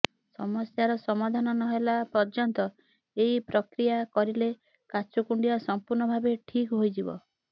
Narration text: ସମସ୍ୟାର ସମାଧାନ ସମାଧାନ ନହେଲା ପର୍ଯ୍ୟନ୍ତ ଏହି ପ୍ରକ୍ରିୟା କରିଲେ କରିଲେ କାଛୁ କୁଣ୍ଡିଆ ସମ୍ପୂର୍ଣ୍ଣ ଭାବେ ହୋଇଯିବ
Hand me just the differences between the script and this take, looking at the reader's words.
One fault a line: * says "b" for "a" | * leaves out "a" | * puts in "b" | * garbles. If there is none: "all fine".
* leaves out "ସମାଧାନ"
* leaves out "କରିଲେ"
* puts in "ଠିକ୍"